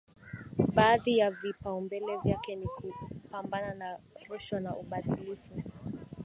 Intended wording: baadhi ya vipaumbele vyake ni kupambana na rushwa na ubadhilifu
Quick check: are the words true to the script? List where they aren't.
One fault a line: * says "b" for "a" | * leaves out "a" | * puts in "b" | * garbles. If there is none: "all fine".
all fine